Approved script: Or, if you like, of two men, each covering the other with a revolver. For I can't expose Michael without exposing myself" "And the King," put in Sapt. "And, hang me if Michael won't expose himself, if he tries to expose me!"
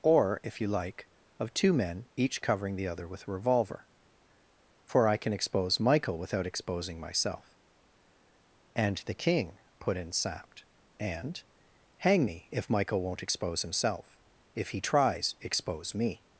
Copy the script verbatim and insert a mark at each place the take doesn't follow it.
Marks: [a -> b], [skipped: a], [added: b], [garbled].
Or, if you like, of two men, each covering the other with a revolver. For I [can't -> can] expose Michael without exposing myself" "And the King," put in Sapt. "And, hang me if Michael won't expose himself, if he tries [skipped: to] expose me!"